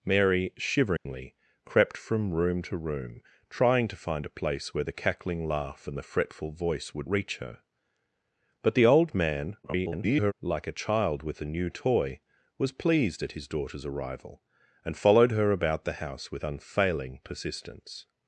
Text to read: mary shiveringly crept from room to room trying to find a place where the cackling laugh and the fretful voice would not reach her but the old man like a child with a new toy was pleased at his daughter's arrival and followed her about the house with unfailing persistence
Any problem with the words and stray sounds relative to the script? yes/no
yes